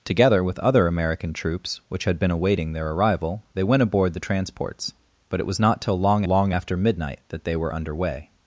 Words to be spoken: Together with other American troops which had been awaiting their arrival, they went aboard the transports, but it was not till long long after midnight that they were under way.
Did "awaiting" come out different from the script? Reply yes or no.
no